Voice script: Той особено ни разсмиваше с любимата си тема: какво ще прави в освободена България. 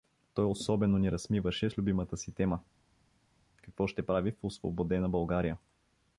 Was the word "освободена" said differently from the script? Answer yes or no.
no